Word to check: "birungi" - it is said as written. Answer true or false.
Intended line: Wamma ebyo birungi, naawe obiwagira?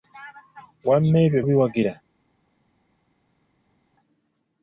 false